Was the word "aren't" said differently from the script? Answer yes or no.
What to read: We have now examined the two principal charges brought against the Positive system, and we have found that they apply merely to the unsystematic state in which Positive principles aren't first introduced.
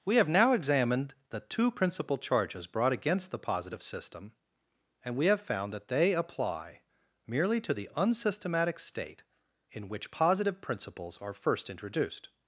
yes